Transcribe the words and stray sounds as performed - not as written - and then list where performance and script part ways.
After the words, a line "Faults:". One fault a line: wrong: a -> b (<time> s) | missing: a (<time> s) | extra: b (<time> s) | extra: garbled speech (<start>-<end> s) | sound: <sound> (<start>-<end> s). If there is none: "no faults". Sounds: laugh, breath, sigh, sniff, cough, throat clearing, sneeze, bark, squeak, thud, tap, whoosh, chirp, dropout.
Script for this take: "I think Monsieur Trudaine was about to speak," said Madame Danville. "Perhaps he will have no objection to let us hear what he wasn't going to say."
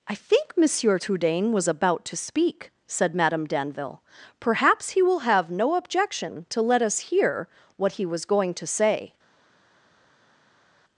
"I think Monsieur Trudaine was about to speak," said Madame Danville. "Perhaps he will have no objection to let us hear what he was going to say."
Faults:
wrong: wasn't -> was (8.0 s)